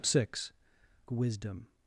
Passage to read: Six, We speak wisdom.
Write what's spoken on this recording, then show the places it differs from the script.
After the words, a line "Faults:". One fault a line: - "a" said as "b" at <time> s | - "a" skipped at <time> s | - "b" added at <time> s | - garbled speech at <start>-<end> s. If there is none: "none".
Six, Wisdom.
Faults:
- "We speak" skipped at 0.5 s